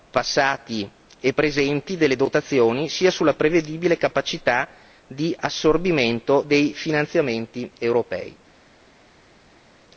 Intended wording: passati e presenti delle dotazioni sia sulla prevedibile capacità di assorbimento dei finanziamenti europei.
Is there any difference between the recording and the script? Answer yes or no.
no